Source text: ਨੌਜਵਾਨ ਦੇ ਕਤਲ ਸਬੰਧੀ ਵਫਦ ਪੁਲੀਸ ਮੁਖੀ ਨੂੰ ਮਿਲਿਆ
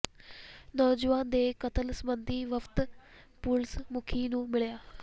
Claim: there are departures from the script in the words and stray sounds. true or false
false